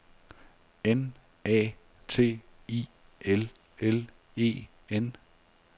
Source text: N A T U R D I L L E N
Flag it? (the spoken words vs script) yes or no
yes